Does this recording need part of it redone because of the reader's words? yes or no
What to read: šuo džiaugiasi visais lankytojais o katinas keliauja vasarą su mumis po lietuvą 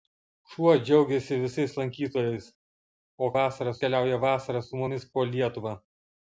yes